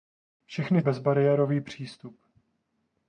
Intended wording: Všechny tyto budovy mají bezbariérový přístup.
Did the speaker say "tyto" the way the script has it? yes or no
no